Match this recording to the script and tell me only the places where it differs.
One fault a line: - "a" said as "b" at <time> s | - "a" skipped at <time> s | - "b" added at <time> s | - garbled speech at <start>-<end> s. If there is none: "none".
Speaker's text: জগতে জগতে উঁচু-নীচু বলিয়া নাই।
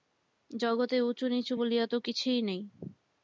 - "জগতে" skipped at 1.0 s
- "তো কিছুই" added at 1.9 s